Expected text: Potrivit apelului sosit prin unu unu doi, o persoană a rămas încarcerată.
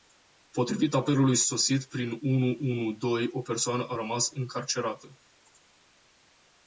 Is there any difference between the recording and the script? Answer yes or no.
no